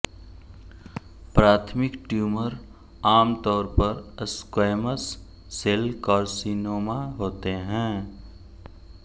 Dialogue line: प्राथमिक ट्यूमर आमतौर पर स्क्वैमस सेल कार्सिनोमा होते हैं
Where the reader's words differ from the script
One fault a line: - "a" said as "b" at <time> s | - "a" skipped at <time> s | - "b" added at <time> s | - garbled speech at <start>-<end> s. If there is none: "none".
none